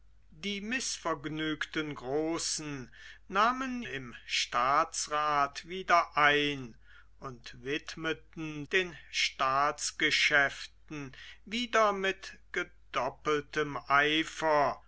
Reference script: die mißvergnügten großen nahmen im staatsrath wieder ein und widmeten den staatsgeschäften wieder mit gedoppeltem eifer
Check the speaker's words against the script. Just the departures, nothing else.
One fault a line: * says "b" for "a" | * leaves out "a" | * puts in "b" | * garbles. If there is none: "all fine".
all fine